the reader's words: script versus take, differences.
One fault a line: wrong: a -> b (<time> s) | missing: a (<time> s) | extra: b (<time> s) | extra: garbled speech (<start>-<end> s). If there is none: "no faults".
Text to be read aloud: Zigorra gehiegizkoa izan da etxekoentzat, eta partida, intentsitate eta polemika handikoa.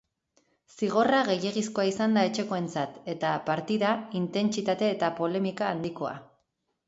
no faults